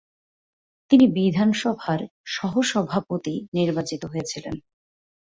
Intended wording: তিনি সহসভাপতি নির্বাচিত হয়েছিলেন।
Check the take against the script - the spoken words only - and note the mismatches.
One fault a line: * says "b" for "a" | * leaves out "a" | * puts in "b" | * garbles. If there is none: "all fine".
* puts in "বিধানসভার"